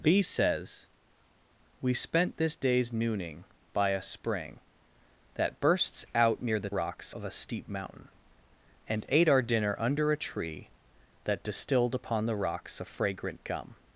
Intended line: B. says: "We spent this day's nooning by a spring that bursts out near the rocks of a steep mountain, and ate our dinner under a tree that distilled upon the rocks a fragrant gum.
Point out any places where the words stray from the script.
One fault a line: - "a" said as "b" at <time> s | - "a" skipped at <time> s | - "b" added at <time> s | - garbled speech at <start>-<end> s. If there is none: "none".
none